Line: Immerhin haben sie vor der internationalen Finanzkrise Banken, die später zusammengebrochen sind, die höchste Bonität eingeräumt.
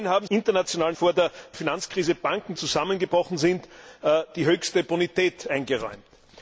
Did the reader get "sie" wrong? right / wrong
wrong